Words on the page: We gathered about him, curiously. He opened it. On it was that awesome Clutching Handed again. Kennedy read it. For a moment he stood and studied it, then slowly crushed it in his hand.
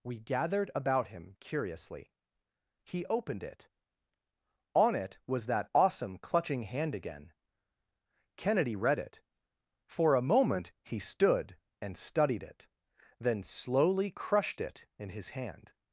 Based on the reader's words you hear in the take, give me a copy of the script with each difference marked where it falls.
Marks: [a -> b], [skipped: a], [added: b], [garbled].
We gathered about him, curiously. He opened it. On it was that awesome Clutching [Handed -> Hand] again. Kennedy read it. For a moment he stood and studied it, then slowly crushed it in his hand.